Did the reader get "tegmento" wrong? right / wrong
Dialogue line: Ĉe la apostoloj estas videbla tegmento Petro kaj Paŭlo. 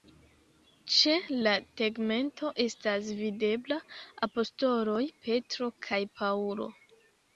wrong